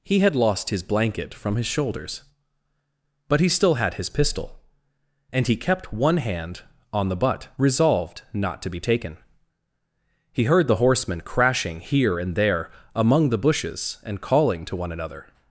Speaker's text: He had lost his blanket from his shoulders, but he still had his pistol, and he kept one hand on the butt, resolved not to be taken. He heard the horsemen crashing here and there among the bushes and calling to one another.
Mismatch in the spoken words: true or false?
false